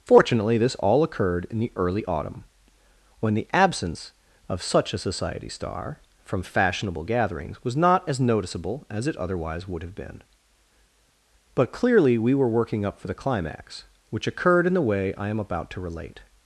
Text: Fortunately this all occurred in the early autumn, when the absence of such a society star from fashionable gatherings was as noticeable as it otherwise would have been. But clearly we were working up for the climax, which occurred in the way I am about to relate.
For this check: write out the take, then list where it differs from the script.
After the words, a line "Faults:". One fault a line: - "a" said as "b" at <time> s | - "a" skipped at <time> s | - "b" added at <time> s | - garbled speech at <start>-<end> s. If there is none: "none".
Fortunately this all occurred in the early autumn, when the absence of such a society star from fashionable gatherings was not as noticeable as it otherwise would have been. But clearly we were working up for the climax, which occurred in the way I am about to relate.
Faults:
- "not" added at 7.8 s